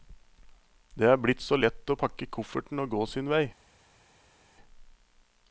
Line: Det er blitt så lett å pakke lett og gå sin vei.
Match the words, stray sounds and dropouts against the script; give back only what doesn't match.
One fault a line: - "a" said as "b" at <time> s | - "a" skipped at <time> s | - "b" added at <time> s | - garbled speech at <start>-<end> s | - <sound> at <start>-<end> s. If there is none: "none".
- "lett" said as "kofferten" at 2.4 s